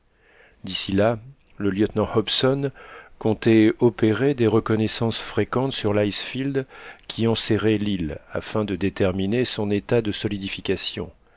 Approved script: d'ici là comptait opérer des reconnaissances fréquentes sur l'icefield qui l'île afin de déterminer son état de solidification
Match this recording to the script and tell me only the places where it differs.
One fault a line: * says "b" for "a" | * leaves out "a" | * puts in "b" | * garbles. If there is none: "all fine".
* puts in "le lieutenant hobson"
* puts in "enserrait"